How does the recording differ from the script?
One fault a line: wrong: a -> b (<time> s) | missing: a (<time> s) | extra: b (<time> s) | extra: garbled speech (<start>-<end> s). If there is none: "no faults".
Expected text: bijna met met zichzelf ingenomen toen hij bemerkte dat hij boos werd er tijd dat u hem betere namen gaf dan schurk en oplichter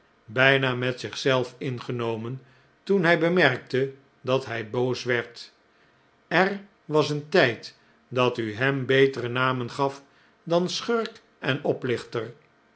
missing: met (1.0 s)
extra: was een (6.8 s)